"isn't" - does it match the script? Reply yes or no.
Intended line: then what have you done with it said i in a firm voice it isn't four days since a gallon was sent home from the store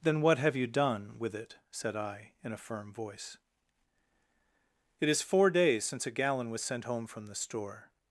no